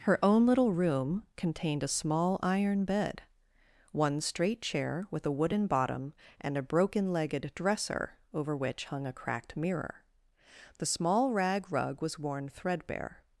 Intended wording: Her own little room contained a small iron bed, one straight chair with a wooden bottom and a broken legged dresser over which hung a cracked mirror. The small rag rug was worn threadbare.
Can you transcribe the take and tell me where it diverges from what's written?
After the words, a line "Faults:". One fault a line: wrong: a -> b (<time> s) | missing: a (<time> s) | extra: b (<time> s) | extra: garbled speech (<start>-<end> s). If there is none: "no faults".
Her own little room contained a small iron bed, one straight chair with a wooden bottom and a broken legged dresser over which hung a cracked mirror. The small rag rug was worn threadbare.
Faults:
no faults